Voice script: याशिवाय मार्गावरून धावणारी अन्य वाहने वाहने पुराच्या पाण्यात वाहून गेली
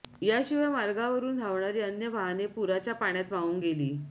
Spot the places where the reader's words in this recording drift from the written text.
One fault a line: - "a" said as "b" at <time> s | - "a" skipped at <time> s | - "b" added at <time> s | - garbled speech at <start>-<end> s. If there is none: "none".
- "वाहने" skipped at 2.5 s